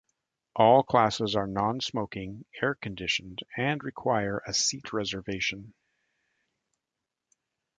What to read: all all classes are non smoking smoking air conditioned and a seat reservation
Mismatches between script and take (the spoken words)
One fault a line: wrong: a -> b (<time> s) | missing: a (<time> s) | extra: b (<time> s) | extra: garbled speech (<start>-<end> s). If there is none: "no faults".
missing: all (0.8 s)
missing: smoking (2.5 s)
extra: require (3.8 s)